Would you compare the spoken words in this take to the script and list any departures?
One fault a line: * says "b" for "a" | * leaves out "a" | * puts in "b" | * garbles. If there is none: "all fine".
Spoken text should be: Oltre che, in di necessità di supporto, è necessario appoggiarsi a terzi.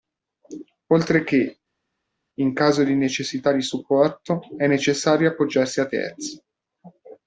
* puts in "caso"